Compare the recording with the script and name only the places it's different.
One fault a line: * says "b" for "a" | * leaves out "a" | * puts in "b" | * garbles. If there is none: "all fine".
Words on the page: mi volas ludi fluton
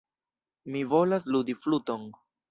all fine